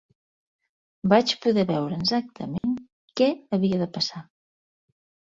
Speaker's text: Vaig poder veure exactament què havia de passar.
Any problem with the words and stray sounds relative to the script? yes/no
yes